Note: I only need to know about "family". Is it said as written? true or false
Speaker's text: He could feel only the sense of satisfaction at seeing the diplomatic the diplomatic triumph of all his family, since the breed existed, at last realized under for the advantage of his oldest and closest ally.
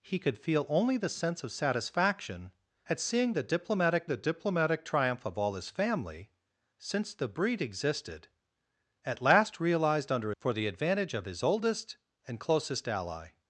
true